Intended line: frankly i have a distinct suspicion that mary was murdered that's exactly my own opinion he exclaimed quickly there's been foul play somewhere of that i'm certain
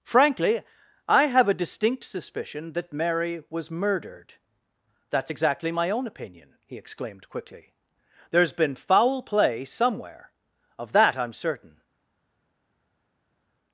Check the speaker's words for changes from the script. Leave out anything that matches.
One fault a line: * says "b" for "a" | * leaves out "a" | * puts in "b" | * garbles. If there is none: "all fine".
all fine